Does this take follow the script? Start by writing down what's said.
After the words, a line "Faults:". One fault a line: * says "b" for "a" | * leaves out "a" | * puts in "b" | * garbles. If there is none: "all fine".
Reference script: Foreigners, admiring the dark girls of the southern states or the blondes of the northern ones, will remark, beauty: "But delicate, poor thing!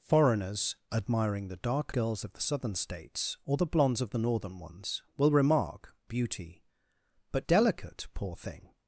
Foreigners, admiring the dark girls of the southern states or the blondes of the northern ones, will remark, beauty: "But delicate, poor thing!
Faults:
all fine